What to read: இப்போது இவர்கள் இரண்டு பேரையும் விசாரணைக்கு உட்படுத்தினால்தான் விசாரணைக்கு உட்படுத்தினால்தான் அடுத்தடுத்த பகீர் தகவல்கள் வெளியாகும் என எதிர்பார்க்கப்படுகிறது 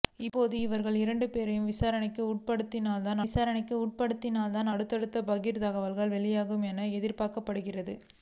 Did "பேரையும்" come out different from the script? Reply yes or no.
no